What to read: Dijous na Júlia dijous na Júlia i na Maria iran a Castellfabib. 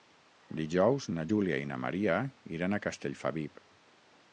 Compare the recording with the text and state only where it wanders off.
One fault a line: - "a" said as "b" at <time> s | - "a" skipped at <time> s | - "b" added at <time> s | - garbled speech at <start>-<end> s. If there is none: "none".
- "dijous na Júlia" skipped at 1.6 s